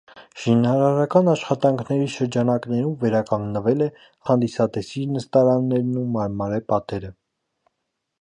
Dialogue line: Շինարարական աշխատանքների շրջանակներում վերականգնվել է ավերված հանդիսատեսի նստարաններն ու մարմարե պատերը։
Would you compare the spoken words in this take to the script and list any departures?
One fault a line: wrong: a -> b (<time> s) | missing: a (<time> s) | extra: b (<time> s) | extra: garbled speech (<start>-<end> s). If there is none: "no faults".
missing: ավերված (3.9 s)